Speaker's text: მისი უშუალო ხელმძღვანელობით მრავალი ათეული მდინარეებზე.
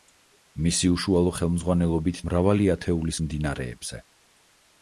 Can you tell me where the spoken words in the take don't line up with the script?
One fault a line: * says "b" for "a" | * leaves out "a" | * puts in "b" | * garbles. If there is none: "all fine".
all fine